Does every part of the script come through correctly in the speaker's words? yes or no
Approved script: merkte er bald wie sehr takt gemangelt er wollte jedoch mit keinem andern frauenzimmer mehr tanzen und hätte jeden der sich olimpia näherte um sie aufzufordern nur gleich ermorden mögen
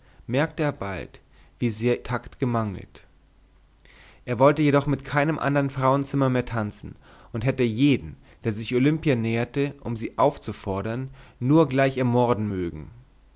yes